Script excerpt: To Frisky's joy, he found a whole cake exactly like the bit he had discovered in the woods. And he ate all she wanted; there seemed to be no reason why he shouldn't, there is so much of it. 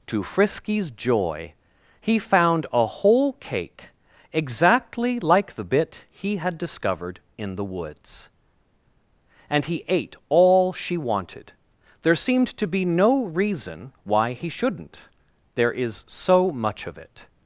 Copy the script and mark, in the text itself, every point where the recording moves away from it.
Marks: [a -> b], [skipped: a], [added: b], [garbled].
To Frisky's joy, he found a whole cake exactly like the bit he had discovered in the woods. And he ate all she wanted; there seemed to be no reason why he shouldn't, there is so much of it.